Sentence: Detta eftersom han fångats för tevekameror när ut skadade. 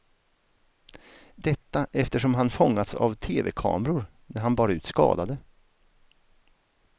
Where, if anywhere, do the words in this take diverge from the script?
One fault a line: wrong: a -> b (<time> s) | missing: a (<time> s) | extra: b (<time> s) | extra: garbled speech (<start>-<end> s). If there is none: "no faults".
wrong: för -> av (3.0 s)
extra: han bar (4.4 s)